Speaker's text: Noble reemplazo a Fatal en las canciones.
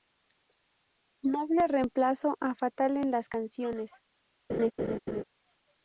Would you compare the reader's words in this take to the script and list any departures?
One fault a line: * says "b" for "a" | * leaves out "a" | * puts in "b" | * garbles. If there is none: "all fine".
all fine